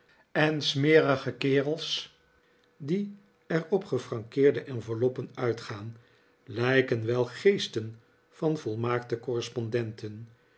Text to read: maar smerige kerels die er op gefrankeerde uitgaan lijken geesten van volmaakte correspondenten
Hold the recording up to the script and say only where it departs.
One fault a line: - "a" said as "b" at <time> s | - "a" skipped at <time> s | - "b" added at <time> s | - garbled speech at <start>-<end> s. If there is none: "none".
- "maar" said as "en" at 0.3 s
- "enveloppen" added at 4.6 s
- "wel" added at 7.1 s